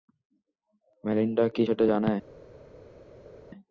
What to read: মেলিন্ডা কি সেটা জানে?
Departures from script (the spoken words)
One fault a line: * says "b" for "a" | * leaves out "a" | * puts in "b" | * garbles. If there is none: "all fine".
all fine